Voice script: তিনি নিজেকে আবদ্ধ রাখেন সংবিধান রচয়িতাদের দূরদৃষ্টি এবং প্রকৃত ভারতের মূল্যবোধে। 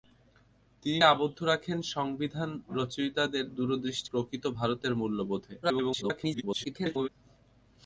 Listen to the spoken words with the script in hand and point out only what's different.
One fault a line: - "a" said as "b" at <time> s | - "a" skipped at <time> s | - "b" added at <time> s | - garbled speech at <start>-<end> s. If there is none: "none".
- "নিজেকে" skipped at 1.0 s
- "এবং" skipped at 4.1 s
- garbled speech at 5.6-7.1 s